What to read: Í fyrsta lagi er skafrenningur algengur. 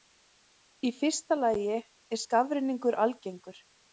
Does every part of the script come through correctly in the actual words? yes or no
yes